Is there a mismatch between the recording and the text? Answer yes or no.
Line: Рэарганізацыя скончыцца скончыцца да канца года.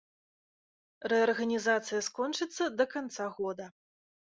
yes